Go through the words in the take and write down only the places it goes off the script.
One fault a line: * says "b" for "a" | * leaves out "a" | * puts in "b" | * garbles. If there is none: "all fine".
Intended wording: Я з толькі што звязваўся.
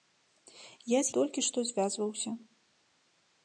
all fine